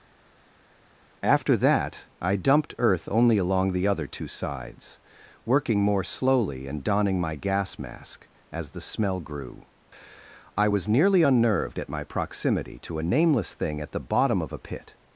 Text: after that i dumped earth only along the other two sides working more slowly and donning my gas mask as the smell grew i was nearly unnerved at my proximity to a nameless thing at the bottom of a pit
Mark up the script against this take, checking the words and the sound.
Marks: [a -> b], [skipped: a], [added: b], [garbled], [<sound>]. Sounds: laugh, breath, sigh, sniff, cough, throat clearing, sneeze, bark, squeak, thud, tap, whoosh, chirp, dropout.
after that i dumped earth only along the other two sides working more slowly and donning my gas mask as the smell grew i was nearly unnerved at my proximity to a nameless thing at the bottom of a pit